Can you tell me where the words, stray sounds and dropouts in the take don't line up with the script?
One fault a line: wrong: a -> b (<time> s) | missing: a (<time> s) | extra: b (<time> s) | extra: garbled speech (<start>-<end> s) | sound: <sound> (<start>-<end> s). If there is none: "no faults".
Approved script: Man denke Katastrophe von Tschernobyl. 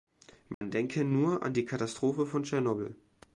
sound: dropout (0.5-0.6 s)
extra: nur an die (1.0 s)